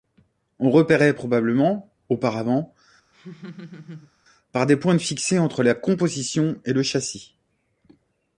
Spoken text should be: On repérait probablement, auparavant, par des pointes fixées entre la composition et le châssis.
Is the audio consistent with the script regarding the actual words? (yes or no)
yes